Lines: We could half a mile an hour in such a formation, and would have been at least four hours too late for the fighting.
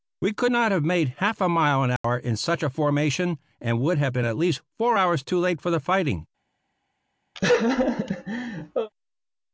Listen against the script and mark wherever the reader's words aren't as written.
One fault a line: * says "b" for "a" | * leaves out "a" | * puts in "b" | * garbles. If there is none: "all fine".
* puts in "not have made"